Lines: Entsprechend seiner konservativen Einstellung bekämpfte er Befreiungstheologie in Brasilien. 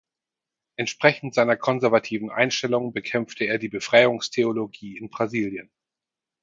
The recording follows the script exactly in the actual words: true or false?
false